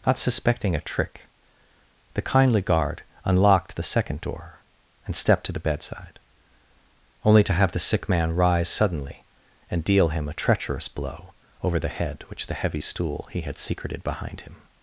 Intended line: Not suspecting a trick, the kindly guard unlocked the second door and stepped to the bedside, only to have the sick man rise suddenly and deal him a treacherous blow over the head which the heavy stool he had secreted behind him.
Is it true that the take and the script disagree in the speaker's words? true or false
false